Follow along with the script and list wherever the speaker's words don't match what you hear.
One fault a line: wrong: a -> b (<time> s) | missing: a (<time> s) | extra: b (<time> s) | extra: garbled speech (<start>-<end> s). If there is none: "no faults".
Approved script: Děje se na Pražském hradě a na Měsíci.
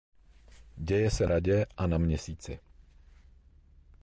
missing: na Pražském (1.3 s)